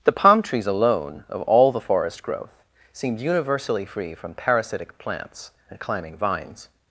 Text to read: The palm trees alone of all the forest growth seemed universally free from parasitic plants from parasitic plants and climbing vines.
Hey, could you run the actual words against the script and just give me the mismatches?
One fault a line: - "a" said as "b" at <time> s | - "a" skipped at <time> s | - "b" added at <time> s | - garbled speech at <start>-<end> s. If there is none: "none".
- "from parasitic plants" skipped at 5.5 s